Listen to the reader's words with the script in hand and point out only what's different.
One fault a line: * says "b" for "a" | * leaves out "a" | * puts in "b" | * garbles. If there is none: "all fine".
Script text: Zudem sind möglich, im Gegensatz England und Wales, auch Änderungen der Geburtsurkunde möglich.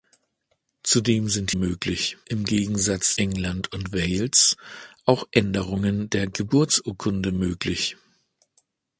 all fine